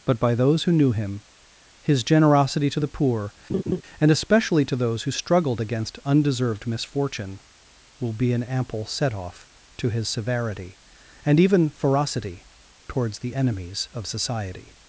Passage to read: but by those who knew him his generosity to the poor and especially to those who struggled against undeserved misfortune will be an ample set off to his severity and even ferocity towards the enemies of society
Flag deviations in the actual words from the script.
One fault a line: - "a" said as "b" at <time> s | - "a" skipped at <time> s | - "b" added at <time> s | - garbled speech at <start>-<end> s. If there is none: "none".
none